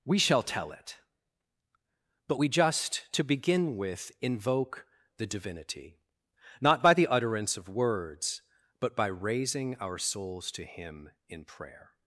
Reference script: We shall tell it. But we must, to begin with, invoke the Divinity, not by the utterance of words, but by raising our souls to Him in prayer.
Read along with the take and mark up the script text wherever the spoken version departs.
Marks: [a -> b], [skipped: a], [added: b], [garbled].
We shall tell it. But we [must, -> just] to begin with, invoke the Divinity, not by the utterance of words, but by raising our souls to Him in prayer.